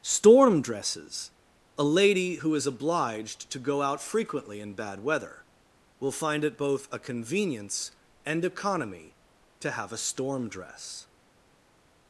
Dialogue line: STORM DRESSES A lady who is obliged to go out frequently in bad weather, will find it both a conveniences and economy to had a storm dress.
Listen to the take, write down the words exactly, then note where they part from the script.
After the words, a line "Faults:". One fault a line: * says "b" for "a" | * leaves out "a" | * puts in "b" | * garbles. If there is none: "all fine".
STORM DRESSES A lady who is obliged to go out frequently in bad weather, will find it both a convenience and economy to have a storm dress.
Faults:
* says "convenience" for "conveniences"
* says "have" for "had"